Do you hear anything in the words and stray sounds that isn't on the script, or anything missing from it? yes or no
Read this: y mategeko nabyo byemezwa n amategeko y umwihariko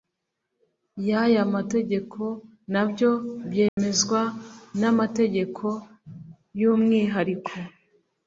yes